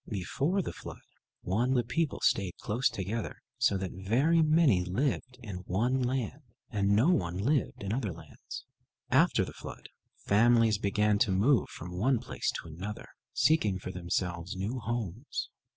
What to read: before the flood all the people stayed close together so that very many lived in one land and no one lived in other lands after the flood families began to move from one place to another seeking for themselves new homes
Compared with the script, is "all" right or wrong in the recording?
wrong